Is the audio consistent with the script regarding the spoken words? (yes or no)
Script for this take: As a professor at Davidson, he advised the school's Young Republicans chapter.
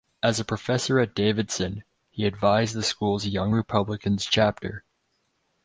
yes